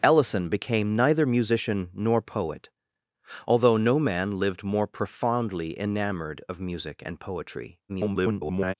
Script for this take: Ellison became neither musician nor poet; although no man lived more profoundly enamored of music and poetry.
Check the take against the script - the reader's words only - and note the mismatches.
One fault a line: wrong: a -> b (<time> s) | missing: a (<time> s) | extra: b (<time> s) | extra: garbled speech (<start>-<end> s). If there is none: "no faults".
extra: garbled speech (7.9-8.7 s)